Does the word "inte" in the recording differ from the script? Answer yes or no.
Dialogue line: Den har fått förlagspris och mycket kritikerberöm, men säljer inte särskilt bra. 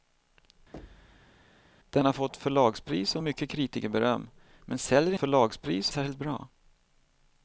yes